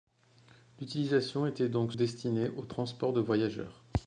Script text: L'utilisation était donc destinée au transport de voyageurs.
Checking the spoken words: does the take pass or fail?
pass